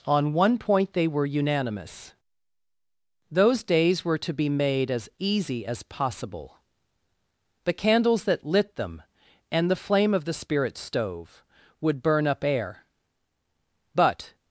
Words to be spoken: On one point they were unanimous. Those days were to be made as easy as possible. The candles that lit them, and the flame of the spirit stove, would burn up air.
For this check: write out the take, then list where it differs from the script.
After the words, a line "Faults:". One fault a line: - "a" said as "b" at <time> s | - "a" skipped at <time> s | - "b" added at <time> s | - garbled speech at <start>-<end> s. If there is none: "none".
On one point they were unanimous. Those days were to be made as easy as possible. The candles that lit them, and the flame of the spirit stove, would burn up air. But
Faults:
- "But" added at 13.9 s